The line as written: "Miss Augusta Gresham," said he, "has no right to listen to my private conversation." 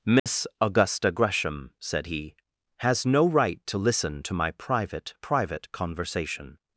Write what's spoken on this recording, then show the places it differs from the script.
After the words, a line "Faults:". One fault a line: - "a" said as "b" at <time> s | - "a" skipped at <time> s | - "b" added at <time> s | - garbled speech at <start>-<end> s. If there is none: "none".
"Miss Augusta Gresham," said he, "has no right to listen to my private private conversation."
Faults:
- "private" added at 5.2 s